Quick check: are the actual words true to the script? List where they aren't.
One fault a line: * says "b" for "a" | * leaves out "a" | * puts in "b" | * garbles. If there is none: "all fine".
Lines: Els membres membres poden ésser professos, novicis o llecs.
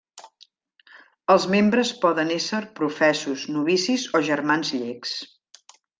* leaves out "membres"
* puts in "germans"